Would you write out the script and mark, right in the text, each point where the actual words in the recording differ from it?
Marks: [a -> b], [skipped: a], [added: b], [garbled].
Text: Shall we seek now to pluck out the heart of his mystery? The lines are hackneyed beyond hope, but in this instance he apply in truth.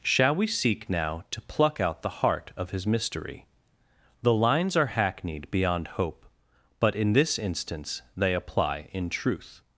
Shall we seek now to pluck out the heart of his mystery? The lines are hackneyed beyond hope, but in this instance [he -> they] apply in truth.